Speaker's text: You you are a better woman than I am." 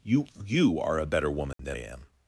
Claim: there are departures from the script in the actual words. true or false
true